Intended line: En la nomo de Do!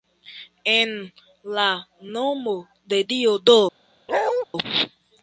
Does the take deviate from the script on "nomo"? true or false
false